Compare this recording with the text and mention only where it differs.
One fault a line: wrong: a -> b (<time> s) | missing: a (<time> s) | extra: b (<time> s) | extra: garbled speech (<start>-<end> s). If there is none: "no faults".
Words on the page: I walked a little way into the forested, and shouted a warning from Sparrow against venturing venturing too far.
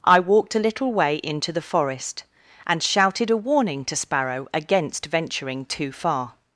wrong: forested -> forest (1.6 s)
wrong: from -> to (3.9 s)
missing: venturing (5.7 s)